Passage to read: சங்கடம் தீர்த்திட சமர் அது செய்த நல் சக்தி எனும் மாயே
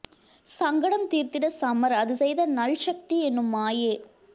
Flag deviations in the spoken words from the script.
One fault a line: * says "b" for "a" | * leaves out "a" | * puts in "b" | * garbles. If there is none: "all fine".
all fine